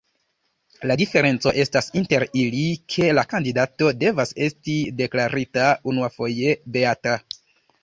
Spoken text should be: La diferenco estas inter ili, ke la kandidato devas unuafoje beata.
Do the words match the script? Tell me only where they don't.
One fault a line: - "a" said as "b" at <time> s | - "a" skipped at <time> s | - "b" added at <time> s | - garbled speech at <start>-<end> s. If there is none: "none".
- "esti deklarita" added at 4.5 s